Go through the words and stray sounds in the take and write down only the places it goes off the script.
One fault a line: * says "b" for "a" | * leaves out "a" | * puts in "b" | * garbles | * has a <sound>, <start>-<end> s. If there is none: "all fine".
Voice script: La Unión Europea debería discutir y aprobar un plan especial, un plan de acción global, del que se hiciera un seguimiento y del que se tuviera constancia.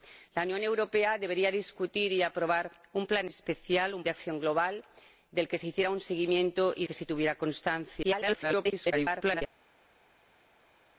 * leaves out "plan"
* leaves out "del"
* garbles